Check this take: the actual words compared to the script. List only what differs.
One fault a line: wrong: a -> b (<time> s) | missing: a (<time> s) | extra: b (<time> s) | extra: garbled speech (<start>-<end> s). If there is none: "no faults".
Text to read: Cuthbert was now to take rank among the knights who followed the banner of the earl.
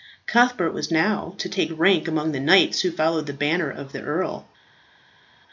no faults